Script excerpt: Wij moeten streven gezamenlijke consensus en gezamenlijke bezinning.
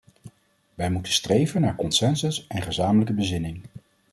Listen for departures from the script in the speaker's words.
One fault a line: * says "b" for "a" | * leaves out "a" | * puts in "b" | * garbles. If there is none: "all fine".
* says "naar" for "gezamenlijke"